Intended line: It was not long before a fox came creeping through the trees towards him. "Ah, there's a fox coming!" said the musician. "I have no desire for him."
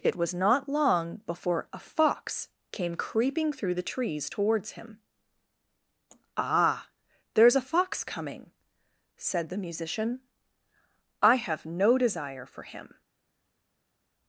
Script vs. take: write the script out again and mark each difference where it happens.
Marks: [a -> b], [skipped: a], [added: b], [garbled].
It was not long before a fox came creeping through the trees towards him. "Ah, there's a fox coming!" said the musician. "I have no desire for him."